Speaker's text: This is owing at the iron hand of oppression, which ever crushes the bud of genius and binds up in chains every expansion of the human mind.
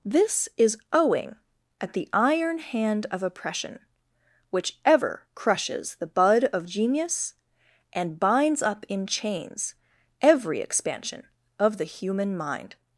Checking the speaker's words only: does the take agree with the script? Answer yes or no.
yes